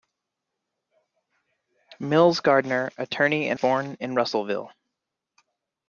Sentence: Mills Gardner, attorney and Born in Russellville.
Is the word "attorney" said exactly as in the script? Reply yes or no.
yes